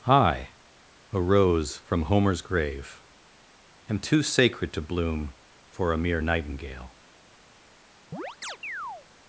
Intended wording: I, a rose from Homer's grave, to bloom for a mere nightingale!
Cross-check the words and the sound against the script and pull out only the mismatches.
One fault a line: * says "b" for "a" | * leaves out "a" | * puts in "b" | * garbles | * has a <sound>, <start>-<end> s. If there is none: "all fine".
* puts in "am too sacred"
* has a chirp, 8.1-9.1 s